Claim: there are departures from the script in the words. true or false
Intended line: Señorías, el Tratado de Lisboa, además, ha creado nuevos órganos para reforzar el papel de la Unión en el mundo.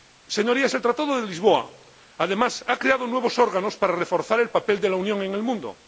false